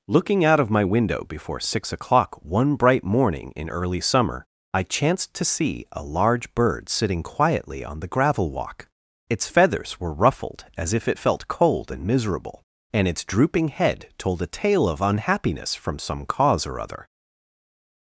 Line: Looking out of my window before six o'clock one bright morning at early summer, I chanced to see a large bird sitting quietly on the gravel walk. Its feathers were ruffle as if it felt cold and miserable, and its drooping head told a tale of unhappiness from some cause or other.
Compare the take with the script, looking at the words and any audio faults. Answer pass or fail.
fail